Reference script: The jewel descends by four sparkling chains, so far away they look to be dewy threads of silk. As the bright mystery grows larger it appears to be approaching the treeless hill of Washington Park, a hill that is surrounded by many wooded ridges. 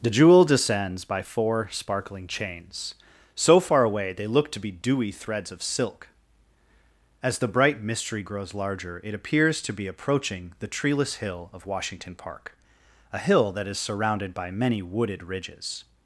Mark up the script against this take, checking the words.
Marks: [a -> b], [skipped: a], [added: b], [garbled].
The jewel descends by four sparkling chains, so far away they look to be dewy threads of silk. As the bright mystery grows larger it appears to be approaching the treeless hill of Washington Park, a hill that is surrounded by many wooded ridges.